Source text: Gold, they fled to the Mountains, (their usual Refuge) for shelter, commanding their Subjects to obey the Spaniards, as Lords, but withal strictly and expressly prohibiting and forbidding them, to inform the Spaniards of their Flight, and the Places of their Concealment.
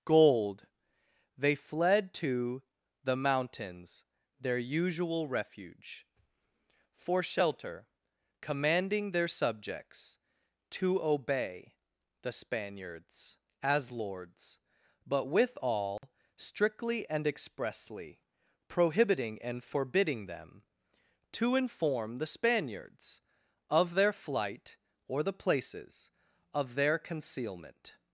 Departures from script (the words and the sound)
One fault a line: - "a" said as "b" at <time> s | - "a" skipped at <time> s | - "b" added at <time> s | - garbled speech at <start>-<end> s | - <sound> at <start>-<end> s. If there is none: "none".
- dropout at 16.0-16.0 s
- "and" said as "or" at 25.1 s